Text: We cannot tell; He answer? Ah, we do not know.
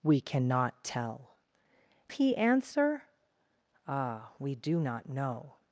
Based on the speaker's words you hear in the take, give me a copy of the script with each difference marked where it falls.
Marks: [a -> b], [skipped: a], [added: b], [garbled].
We cannot tell; He answer? Ah, we do not know.